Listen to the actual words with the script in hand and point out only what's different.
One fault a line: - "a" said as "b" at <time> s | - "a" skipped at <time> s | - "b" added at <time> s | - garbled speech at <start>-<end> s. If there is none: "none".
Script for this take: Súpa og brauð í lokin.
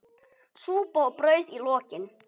none